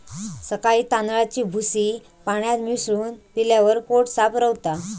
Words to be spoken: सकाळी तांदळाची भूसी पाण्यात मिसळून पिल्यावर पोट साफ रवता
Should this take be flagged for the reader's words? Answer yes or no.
no